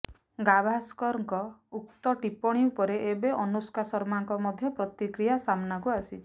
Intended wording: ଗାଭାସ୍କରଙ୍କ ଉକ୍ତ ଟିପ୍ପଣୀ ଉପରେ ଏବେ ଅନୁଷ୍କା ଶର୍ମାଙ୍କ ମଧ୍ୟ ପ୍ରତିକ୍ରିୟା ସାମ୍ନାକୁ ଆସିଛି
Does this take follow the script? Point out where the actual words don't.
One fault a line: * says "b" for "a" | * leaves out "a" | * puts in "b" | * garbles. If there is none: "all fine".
all fine